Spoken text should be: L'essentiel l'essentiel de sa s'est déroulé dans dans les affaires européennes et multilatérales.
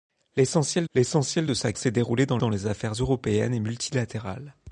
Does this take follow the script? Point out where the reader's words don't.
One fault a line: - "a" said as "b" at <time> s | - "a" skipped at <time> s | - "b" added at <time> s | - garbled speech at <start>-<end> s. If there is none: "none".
none